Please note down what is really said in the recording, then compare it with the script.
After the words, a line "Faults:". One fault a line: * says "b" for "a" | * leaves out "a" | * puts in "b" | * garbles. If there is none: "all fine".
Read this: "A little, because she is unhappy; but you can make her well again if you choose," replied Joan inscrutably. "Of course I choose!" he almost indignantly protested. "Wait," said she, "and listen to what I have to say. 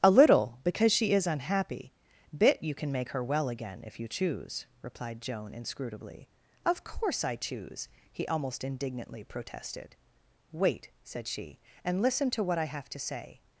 "A little, because she is unhappy; bit you can make her well again if you choose," replied Joan inscrutably. "Of course I choose!" he almost indignantly protested. "Wait," said she, "and listen to what I have to say.
Faults:
* says "bit" for "but"